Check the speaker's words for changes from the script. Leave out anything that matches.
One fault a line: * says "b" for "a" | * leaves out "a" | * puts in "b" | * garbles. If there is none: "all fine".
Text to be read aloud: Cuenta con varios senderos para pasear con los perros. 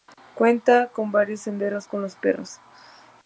* leaves out "para pasear"